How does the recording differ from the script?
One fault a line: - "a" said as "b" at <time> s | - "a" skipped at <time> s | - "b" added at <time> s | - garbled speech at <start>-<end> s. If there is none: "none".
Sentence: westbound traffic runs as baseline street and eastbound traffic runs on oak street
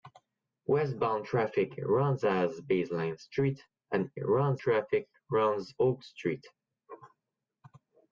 - "eastbound" said as "runs" at 4.2 s
- "on" skipped at 5.7 s